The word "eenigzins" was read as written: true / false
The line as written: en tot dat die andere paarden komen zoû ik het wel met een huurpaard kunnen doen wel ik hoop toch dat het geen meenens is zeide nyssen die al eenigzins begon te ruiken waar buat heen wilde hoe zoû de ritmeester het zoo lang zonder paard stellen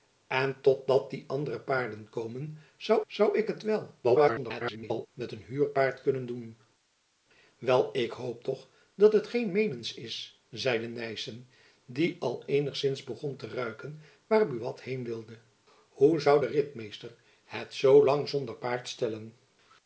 true